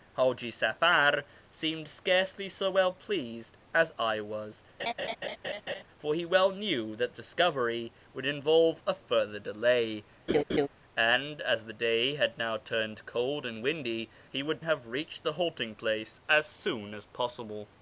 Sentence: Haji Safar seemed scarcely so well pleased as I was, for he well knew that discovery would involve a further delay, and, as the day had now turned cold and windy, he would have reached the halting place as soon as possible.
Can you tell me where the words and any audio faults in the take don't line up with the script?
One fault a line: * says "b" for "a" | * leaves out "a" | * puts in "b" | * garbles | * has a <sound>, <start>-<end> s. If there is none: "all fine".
* has a laugh, 4.8-5.8 s
* has a laugh, 10.3-10.7 s